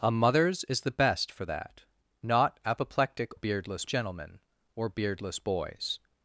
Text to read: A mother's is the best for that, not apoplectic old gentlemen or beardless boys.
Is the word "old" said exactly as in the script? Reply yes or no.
no